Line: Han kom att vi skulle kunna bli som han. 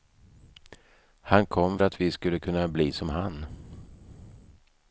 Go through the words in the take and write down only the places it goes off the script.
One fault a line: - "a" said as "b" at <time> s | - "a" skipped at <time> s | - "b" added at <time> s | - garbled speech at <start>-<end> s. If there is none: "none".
none